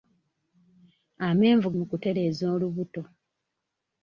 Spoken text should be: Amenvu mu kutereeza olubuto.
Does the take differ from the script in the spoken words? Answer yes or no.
no